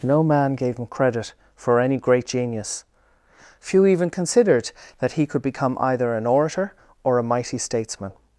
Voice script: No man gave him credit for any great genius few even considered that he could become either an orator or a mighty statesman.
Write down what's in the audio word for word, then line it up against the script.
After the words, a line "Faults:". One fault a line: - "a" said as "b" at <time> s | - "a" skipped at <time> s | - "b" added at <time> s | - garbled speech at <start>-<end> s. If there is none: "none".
No man gave him credit for any great genius few even considered that he could become either an orator or a mighty statesman.
Faults:
none